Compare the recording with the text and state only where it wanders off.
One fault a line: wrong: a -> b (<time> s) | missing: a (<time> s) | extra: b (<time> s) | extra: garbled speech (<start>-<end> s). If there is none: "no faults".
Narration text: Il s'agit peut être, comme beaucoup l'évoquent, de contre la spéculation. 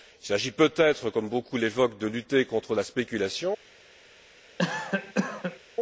extra: lutter (2.1 s)